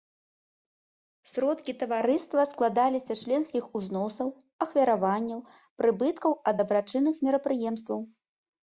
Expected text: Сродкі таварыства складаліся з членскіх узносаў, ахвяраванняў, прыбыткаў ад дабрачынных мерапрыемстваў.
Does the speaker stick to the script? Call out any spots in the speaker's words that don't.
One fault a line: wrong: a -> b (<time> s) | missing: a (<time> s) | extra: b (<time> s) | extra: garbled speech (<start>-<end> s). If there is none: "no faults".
no faults